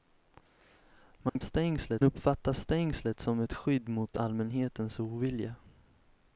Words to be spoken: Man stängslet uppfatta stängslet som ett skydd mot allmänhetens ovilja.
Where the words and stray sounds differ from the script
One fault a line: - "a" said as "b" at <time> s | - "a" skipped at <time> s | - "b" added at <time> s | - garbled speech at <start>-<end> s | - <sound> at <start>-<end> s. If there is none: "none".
- dropout at 1.3-1.4 s